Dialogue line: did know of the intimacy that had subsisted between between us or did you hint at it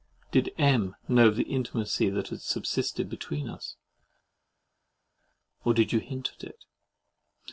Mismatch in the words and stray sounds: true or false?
true